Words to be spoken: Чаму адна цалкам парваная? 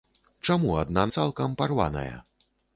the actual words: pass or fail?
pass